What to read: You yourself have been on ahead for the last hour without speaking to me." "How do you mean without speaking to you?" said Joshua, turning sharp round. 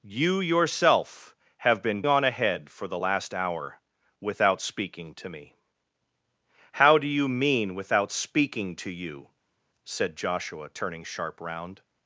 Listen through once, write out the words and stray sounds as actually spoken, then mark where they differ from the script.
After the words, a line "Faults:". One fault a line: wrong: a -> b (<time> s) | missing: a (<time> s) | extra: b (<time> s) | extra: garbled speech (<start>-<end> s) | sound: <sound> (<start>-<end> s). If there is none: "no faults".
You yourself have been on ahead for the last hour without speaking to me." "How do you mean without speaking to you?" said Joshua, turning sharp round.
Faults:
no faults